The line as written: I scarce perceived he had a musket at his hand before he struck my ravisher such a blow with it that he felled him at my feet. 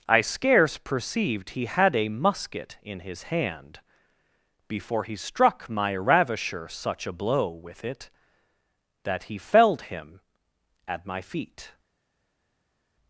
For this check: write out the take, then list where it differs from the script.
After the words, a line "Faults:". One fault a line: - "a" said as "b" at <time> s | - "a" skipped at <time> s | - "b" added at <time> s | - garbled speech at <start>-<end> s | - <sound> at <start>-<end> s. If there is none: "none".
I scarce perceived he had a musket in his hand before he struck my ravisher such a blow with it that he felled him at my feet.
Faults:
- "at" said as "in" at 2.8 s